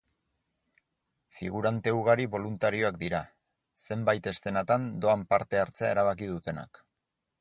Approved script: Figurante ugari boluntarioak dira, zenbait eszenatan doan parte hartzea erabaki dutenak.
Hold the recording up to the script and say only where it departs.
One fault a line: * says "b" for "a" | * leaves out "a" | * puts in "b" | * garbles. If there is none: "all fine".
all fine